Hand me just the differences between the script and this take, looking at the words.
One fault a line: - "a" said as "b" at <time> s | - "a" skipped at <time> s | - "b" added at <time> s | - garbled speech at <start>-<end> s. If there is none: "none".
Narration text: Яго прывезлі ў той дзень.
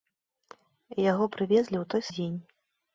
none